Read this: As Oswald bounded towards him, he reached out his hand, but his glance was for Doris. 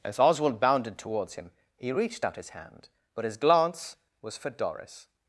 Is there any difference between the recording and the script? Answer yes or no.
no